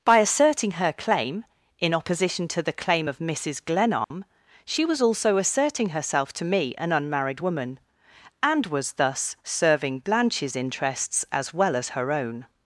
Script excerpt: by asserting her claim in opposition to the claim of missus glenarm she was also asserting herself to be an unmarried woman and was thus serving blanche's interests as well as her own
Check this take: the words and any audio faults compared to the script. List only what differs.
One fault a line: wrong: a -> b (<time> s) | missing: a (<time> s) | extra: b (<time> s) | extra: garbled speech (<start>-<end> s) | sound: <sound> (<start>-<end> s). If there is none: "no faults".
sound: dropout (4.0-4.1 s)
wrong: be -> me (6.5 s)